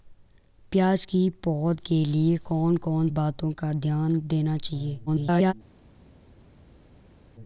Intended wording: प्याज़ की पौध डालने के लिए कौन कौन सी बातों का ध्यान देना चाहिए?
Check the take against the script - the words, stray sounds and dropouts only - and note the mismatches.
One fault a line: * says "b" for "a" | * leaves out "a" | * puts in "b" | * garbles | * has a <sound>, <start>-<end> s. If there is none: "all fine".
* leaves out "डालने"
* leaves out "सी"
* garbles